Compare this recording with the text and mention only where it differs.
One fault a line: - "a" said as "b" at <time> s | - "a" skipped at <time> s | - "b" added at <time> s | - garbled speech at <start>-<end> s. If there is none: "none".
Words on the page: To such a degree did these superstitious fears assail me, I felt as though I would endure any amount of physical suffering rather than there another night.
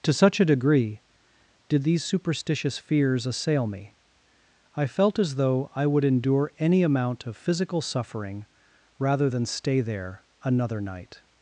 - "stay" added at 9.4 s